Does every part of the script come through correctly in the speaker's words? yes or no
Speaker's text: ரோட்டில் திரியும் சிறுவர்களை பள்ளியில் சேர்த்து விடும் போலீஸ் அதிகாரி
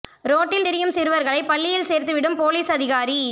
yes